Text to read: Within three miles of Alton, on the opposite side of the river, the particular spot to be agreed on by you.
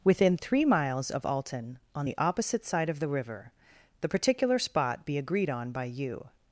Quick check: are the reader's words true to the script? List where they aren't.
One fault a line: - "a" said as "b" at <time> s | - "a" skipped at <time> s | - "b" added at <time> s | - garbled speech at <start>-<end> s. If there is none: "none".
- "to" skipped at 5.0 s